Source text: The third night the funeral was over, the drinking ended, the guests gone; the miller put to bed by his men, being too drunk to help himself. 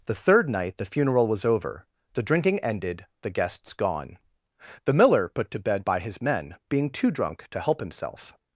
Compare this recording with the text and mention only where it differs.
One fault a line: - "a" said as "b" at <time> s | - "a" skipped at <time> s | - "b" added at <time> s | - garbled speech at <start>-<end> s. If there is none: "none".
none